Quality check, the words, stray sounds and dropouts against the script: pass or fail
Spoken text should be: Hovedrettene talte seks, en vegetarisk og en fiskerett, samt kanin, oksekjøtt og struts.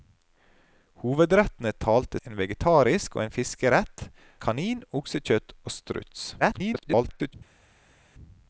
fail